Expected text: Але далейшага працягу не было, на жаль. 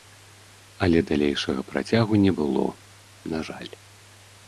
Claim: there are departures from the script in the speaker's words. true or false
false